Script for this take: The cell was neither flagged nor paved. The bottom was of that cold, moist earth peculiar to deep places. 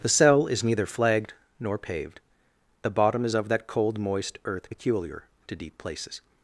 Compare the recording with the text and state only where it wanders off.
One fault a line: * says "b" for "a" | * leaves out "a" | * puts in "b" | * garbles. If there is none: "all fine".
* says "is" for "was"
* says "is" for "was"